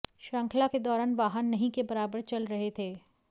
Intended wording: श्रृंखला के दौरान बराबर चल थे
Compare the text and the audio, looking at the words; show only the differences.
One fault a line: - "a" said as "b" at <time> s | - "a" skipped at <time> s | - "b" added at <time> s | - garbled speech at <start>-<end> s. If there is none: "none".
- "वाहन नहीं के" added at 1.1 s
- "रहे" added at 2.5 s